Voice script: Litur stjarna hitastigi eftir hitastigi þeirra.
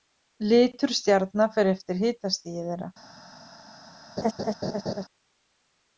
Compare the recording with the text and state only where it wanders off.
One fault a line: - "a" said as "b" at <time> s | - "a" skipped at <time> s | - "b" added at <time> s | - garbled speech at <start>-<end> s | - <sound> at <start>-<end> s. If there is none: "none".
- "hitastigi" said as "fer" at 1.6 s
- laugh at 4.2-5.0 s